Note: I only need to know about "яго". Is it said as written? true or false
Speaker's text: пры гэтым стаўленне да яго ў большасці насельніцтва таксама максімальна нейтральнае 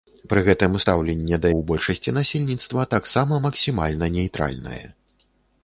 false